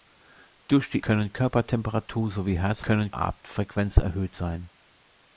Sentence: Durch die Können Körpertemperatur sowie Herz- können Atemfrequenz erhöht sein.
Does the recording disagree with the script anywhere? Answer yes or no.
no